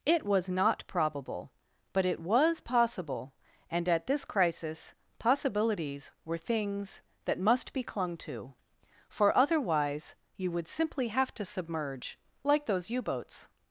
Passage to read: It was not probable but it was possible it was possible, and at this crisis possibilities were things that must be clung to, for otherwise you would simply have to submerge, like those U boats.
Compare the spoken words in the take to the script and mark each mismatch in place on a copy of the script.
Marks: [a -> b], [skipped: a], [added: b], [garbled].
It was not probable but it was possible [skipped: it was possible,] and at this crisis possibilities were things that must be clung to, for otherwise you would simply have to submerge, like those U boats.